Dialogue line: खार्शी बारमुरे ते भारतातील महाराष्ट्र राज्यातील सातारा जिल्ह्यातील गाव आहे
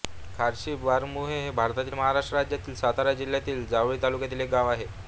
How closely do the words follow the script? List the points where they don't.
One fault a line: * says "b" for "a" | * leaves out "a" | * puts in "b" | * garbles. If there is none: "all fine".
* says "हे" for "ते"
* puts in "जावळी तालुक्यातील एक"